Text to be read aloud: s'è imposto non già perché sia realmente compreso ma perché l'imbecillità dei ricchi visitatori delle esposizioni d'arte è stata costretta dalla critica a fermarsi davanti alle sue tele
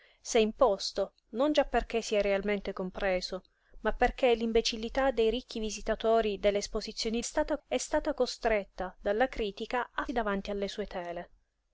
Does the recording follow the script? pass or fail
fail